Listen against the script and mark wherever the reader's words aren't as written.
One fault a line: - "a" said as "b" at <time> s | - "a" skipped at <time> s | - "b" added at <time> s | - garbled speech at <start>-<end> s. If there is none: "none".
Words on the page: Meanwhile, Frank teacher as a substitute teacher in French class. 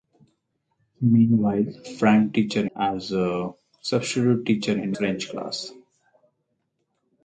none